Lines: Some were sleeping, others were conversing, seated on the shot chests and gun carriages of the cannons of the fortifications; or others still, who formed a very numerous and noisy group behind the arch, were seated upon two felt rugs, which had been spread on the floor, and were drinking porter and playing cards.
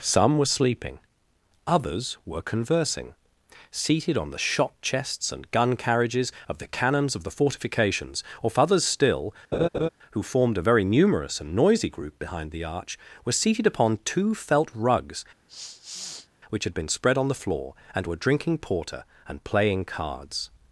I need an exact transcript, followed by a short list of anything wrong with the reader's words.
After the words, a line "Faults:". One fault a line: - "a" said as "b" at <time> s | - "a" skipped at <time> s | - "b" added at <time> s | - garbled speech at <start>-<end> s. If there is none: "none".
Some were sleeping, others were conversing, seated on the shot chests and gun carriages of the cannons of the fortifications; or others still, who formed a very numerous and noisy group behind the arch, were seated upon two felt rugs, which had been spread on the floor, and were drinking porter and playing cards.
Faults:
none